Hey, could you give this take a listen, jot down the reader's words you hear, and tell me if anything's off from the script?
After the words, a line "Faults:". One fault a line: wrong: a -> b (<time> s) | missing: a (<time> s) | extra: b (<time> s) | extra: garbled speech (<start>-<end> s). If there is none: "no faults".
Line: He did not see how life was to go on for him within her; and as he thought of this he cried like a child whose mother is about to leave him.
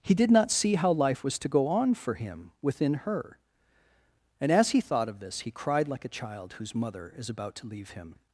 He did not see how life was to go on for him within her; and as he thought of this he cried like a child whose mother is about to leave him.
Faults:
no faults